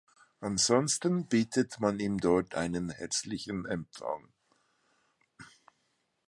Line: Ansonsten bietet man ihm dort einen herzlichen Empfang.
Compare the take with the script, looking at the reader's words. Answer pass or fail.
pass